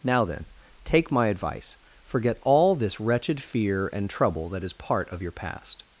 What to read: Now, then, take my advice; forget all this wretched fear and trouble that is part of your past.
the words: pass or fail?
pass